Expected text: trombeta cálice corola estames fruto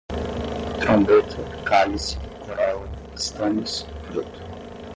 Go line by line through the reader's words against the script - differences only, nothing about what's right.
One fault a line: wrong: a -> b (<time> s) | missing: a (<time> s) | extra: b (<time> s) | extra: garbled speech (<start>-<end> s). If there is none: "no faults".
no faults